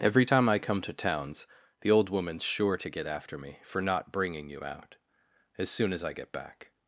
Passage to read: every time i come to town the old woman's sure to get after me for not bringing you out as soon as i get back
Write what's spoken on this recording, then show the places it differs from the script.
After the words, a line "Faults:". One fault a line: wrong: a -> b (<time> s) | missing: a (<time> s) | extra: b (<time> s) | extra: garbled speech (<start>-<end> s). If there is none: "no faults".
every time i come to towns the old woman's sure to get after me for not bringing you out as soon as i get back
Faults:
wrong: town -> towns (0.9 s)